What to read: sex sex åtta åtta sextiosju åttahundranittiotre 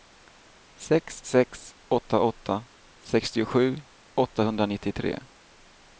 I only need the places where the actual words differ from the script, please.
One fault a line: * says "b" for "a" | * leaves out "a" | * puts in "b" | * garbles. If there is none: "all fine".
all fine